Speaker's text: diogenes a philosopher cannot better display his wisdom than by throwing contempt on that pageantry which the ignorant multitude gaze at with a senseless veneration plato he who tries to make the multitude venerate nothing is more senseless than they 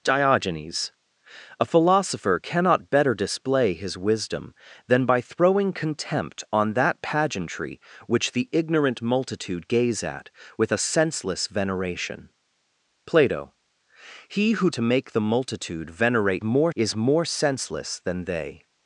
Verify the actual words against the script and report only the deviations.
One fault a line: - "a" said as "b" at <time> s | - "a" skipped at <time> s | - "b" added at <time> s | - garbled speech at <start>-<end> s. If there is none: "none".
- "tries" skipped at 14.7 s
- "nothing" said as "more" at 16.4 s